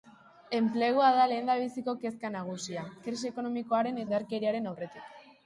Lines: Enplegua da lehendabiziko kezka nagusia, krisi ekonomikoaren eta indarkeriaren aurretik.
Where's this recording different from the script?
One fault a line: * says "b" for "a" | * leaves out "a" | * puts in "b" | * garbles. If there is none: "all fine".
* leaves out "eta"